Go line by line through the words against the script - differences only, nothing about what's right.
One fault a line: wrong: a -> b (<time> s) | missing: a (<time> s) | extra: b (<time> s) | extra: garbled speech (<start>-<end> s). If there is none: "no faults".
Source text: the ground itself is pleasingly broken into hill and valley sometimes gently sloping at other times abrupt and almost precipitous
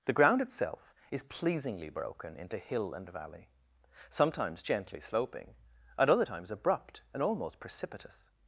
no faults